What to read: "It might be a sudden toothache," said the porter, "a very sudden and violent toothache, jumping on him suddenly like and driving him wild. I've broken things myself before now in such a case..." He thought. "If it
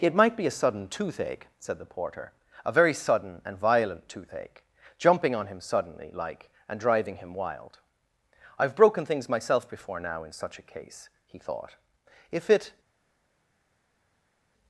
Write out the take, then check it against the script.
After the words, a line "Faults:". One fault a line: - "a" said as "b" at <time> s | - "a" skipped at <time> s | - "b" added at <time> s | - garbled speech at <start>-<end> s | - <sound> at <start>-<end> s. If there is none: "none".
"It might be a sudden toothache," said the porter, "a very sudden and violent toothache, jumping on him suddenly like and driving him wild. I've broken things myself before now in such a case..." He thought. "If it
Faults:
none